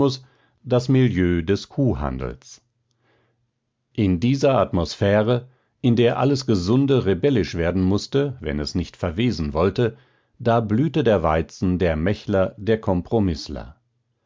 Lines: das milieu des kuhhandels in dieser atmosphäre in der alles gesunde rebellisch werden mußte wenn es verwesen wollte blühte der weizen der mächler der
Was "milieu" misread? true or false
false